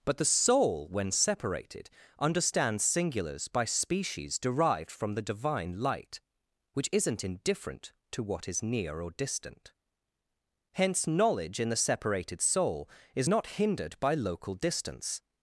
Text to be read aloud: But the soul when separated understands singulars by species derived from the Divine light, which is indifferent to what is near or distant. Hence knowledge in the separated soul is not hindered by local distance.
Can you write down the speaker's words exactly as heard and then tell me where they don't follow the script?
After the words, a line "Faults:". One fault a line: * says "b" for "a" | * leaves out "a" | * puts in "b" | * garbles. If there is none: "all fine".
But the soul when separated understands singulars by species derived from the Divine light, which isn't indifferent to what is near or distant. Hence knowledge in the separated soul is not hindered by local distance.
Faults:
* says "isn't" for "is"